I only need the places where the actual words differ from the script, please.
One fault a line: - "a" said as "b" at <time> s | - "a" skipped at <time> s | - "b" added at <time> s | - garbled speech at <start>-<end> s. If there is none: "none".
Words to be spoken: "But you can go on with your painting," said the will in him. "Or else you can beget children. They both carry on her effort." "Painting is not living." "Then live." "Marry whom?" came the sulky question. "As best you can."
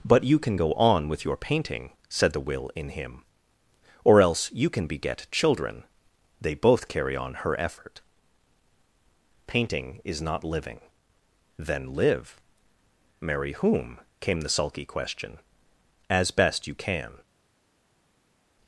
none